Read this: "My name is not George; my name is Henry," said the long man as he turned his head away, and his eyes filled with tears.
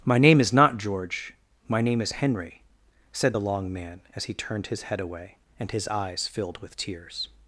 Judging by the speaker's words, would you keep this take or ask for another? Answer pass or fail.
pass